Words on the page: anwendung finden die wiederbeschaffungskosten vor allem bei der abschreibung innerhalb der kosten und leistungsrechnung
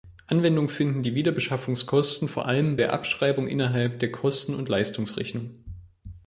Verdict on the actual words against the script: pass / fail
fail